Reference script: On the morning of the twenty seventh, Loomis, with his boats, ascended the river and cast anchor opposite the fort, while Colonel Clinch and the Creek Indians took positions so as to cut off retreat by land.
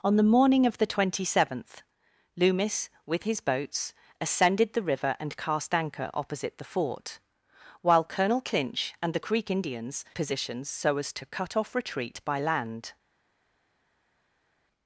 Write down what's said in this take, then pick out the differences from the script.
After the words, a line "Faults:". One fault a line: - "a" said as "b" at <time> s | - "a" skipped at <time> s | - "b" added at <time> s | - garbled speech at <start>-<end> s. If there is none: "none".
On the morning of the twenty seventh, Loomis, with his boats, ascended the river and cast anchor opposite the fort, while Colonel Clinch and the Creek Indians positions so as to cut off retreat by land.
Faults:
- "took" skipped at 10.0 s